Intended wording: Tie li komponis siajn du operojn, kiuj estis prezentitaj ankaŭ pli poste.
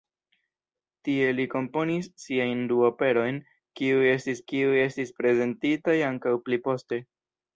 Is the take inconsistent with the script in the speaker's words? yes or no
yes